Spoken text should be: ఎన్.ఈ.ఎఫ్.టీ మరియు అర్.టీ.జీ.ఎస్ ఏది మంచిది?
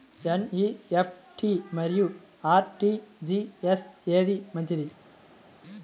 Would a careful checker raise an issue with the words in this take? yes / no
no